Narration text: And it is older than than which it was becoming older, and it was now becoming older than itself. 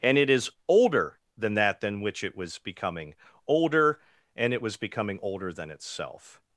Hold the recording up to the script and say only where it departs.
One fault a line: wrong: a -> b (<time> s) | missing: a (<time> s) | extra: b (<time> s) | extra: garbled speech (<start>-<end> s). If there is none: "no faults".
extra: that (1.6 s)
missing: now (4.8 s)